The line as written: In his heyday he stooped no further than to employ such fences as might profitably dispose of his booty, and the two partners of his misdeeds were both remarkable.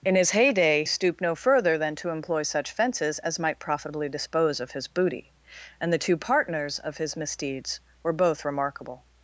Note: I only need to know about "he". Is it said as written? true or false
false